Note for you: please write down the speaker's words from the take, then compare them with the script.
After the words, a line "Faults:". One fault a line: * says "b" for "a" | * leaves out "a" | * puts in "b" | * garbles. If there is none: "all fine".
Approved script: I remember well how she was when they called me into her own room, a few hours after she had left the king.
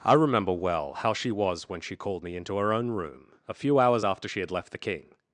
I remember well how she was when she called me into her own room, a few hours after she had left the king.
Faults:
* says "she" for "they"